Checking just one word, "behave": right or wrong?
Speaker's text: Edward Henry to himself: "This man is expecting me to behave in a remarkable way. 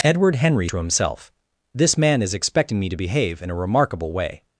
right